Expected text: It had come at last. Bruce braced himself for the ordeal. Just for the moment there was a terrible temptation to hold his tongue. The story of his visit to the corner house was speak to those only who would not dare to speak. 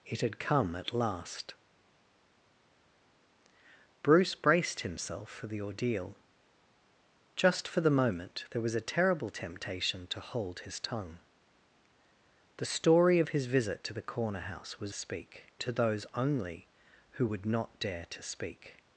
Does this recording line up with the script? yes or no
yes